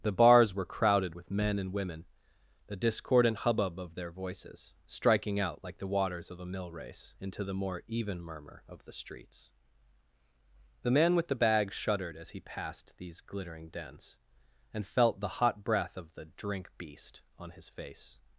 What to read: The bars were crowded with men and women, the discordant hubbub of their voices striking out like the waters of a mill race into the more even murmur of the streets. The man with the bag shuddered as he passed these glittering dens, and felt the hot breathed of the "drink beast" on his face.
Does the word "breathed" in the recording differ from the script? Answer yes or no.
yes